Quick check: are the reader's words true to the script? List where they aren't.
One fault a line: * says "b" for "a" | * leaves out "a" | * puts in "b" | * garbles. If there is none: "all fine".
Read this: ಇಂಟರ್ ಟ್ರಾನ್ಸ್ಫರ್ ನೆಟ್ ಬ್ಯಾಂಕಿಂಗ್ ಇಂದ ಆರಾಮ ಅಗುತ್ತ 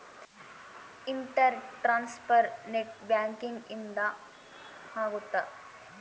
* leaves out "ಆರಾಮ"